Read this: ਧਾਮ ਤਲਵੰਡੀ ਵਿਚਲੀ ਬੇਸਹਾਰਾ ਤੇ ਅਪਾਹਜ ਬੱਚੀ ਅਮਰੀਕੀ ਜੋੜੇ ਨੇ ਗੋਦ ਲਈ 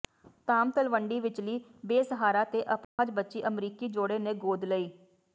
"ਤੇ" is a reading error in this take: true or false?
false